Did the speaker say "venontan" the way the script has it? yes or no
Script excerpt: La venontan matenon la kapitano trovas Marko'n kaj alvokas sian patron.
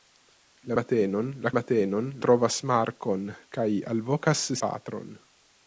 no